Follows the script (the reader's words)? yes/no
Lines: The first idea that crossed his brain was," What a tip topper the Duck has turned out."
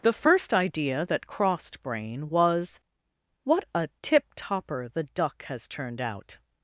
no